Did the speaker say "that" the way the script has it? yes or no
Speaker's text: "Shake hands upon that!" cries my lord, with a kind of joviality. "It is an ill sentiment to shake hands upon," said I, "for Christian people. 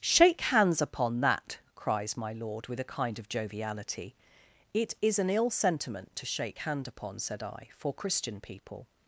yes